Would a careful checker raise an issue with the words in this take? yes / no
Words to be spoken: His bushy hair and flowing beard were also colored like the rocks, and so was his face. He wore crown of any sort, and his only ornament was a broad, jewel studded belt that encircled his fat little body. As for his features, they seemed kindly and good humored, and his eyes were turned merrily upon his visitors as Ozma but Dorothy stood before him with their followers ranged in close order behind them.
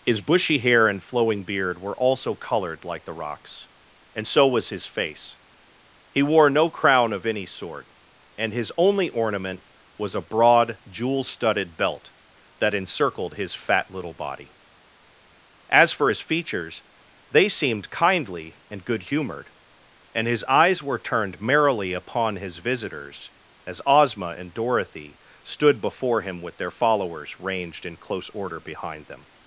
yes